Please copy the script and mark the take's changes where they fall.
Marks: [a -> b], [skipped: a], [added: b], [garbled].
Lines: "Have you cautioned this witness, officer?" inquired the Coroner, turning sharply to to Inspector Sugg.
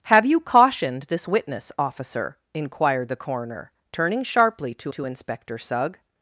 "Have you cautioned this witness, officer?" inquired the Coroner, turning sharply to to Inspector Sugg.